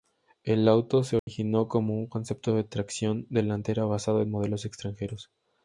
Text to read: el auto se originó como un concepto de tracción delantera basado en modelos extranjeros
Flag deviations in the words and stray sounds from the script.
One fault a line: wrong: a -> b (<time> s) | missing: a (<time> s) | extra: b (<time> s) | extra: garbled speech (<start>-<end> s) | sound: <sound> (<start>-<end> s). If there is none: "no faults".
sound: dropout (1.2-1.3 s)